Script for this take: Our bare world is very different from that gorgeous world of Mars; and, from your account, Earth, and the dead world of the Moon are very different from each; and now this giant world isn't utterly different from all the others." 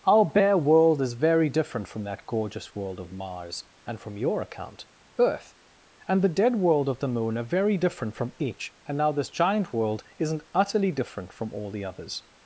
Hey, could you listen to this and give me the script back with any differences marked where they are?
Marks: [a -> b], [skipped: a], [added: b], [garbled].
Our bare world is very different from that gorgeous world of Mars; and, from your account, Earth, and the dead world of the Moon are very different from each; and now this giant world isn't utterly different from all the others."